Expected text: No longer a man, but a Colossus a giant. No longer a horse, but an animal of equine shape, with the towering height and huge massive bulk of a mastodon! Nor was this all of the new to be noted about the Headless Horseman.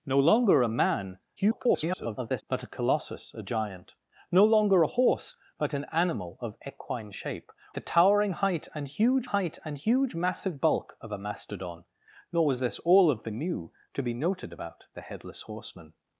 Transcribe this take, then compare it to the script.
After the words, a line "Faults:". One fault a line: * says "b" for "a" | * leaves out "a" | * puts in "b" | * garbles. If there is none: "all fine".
No longer a man, [garbled] but a Colossus a giant. No longer a horse, but an animal of equine shape, the towering height and huge height and huge massive bulk of a mastodon! Nor was this all of the new to be noted about the Headless Horseman.
Faults:
* garbles
* leaves out "with"
* puts in "height and huge"